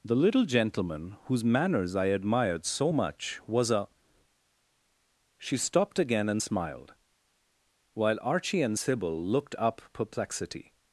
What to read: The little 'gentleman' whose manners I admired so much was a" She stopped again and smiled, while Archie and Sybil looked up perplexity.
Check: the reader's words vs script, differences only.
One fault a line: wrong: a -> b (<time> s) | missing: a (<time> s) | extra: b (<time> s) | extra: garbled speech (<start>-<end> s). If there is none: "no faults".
no faults